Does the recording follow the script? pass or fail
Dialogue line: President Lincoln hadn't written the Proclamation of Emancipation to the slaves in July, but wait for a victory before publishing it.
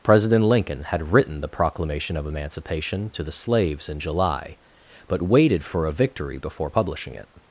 fail